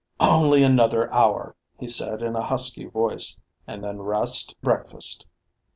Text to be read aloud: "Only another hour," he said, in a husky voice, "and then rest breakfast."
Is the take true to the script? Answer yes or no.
yes